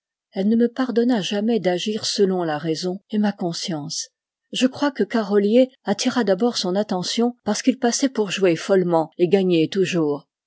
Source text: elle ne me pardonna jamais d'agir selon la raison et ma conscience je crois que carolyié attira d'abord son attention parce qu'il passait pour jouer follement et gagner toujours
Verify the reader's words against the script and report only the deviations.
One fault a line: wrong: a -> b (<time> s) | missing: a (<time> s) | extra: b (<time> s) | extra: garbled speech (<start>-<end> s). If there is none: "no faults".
no faults